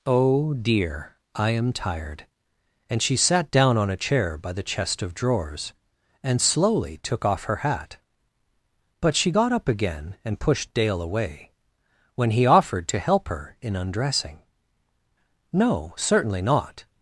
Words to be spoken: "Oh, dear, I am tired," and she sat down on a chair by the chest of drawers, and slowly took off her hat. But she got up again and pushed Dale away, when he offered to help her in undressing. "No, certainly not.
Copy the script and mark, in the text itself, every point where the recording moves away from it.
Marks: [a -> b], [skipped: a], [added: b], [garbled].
"Oh, dear, I am tired," and she sat down on a chair by the chest of drawers, and slowly took off her hat. But she got up again and pushed Dale away, when he offered to help her in undressing. "No, certainly not.